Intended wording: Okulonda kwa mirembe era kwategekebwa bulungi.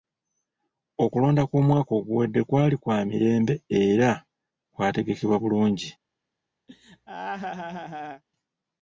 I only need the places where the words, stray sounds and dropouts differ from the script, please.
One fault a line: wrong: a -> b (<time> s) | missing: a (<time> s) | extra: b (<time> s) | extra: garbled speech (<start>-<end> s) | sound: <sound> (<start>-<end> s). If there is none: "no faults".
extra: kw'omwaka oguwedde kwali (1.5 s)
sound: laugh (6.7-8.2 s)